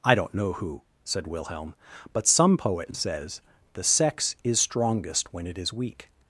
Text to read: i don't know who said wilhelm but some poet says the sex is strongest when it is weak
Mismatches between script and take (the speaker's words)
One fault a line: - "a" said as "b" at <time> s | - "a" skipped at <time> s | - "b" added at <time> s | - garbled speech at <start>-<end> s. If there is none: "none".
none